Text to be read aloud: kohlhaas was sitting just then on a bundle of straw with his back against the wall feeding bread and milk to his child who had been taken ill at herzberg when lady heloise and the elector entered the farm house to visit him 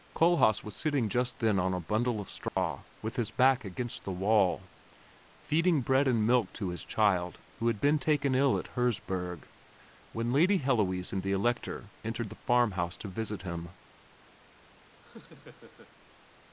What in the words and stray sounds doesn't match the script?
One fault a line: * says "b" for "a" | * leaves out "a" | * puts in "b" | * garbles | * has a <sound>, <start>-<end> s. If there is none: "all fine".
* has a dropout, 2.5-2.6 s
* has a laugh, 15.0-15.9 s